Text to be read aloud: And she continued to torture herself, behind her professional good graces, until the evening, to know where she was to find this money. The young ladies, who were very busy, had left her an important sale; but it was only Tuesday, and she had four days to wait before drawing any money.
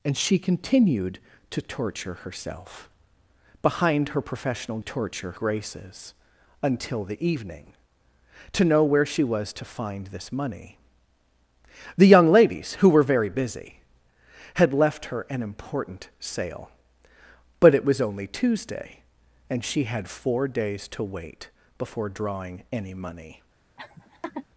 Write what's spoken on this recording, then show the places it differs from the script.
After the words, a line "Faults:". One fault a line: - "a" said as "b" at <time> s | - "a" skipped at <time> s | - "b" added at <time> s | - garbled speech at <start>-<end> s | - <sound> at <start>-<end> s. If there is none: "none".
And she continued to torture herself, behind her professional torture graces, until the evening, to know where she was to find this money. The young ladies, who were very busy, had left her an important sale; but it was only Tuesday, and she had four days to wait before drawing any money.
Faults:
- "good" said as "torture" at 4.8 s
- laugh at 23.8-24.5 s